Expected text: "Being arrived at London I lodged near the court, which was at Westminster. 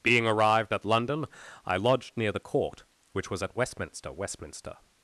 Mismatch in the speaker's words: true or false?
true